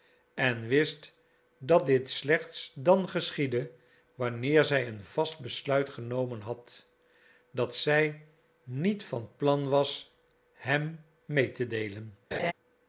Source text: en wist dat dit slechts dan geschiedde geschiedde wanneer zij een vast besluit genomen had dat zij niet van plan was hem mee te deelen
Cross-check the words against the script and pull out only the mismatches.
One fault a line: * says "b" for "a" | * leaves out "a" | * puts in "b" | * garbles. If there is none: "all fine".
* leaves out "geschiedde"